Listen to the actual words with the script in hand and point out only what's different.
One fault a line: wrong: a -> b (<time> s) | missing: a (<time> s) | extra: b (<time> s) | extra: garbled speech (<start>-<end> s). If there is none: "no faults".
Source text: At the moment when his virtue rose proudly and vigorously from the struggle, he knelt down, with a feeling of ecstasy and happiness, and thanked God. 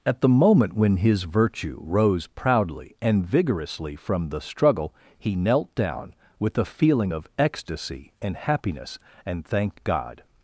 no faults